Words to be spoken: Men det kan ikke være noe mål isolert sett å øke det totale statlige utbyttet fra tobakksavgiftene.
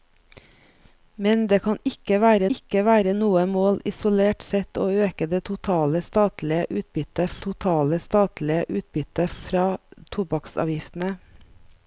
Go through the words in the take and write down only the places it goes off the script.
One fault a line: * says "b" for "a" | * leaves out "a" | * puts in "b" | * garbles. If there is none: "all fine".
* puts in "ikke være"
* puts in "totale statlige utbyttet"